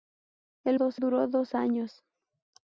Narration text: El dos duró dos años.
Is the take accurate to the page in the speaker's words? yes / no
yes